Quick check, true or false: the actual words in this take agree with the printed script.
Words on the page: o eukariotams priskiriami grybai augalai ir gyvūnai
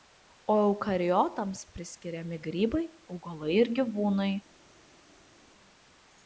true